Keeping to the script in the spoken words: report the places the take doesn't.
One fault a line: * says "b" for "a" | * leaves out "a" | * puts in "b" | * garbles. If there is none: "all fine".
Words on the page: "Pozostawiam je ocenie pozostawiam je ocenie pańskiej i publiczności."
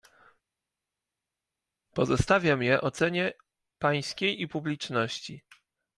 * leaves out "pozostawiam je ocenie"